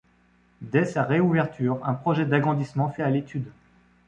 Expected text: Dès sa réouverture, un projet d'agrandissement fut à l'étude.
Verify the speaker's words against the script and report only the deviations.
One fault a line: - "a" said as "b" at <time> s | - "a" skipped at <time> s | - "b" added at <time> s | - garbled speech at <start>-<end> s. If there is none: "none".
none